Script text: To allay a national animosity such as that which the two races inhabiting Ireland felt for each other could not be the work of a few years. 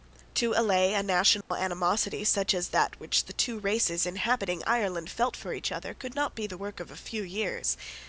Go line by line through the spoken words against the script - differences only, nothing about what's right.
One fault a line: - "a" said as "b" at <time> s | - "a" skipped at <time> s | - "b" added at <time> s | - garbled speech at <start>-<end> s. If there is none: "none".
none